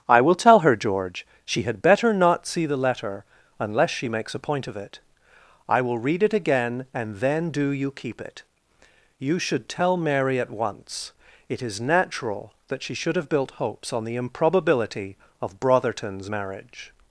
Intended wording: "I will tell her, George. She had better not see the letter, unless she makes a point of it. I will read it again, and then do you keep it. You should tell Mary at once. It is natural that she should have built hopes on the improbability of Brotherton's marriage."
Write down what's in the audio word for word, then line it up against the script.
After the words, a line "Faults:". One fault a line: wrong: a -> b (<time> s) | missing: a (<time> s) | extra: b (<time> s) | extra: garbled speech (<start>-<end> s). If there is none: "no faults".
"I will tell her, George. She had better not see the letter, unless she makes a point of it. I will read it again, and then do you keep it. You should tell Mary at once. It is natural that she should have built hopes on the improbability of Brotherton's marriage."
Faults:
no faults